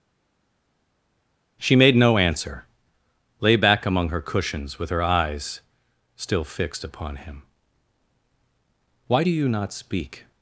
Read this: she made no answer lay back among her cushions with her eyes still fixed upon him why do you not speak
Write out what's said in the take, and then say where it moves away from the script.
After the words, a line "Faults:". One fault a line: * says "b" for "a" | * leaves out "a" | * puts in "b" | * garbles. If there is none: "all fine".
she made no answer lay back among her cushions with her eyes still fixed upon him why do you not speak
Faults:
all fine